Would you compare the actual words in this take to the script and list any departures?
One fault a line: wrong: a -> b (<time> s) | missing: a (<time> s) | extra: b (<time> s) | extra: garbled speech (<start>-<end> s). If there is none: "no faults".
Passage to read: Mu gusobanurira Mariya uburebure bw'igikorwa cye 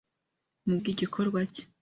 missing: gusobanurira Mariya uburebure (0.8 s)